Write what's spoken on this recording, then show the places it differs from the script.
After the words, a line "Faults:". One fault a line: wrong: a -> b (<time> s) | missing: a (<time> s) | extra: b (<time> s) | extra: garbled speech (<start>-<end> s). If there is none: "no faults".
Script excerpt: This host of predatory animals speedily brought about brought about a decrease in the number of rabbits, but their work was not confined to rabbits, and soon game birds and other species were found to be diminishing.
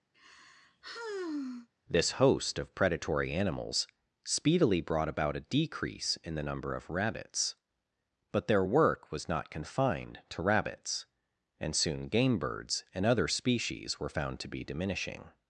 This host of predatory animals speedily brought about a decrease in the number of rabbits, but their work was not confined to rabbits, and soon game birds and other species were found to be diminishing.
Faults:
missing: brought about (5.4 s)